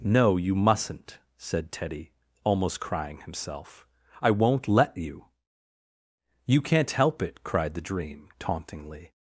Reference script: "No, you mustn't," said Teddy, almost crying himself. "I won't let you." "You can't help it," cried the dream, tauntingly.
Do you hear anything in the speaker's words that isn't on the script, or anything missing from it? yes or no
no